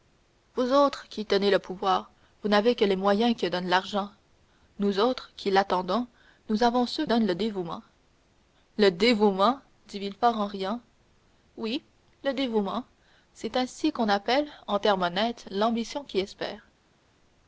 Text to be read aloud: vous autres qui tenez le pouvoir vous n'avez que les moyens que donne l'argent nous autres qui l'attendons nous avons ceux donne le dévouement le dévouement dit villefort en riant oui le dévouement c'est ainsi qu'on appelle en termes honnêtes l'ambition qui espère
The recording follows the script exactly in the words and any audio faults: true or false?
true